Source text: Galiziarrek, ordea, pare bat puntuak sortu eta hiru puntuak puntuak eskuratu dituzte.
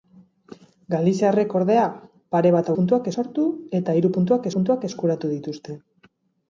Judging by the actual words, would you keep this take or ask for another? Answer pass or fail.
pass